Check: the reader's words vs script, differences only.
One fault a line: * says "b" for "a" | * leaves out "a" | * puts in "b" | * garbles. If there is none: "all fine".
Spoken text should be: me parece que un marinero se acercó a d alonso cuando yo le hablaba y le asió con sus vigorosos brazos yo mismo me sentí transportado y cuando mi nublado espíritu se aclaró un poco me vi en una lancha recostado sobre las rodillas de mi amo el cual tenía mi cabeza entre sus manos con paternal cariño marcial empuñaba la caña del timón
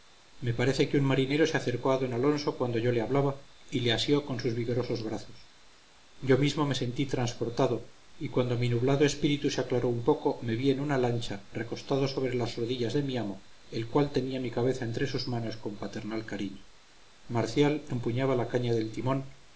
all fine